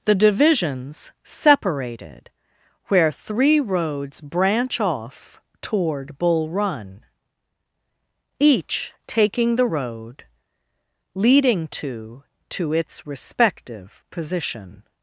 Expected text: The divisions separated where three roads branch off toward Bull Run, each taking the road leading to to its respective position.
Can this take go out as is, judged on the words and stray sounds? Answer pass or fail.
pass